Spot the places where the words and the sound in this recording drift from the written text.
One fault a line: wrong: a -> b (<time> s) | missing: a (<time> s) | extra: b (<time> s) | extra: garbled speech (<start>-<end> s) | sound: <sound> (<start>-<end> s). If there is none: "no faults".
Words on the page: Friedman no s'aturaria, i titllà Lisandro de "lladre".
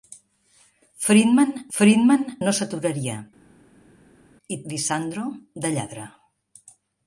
extra: friedman (1.8 s)
missing: titllà (4.6 s)